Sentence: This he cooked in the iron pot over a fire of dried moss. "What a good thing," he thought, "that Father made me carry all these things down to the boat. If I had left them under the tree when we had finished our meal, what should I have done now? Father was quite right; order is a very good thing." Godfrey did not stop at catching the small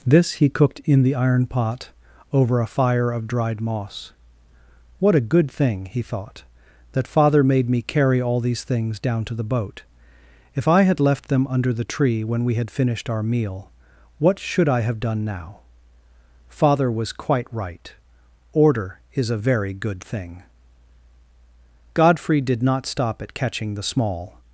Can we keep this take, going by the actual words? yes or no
yes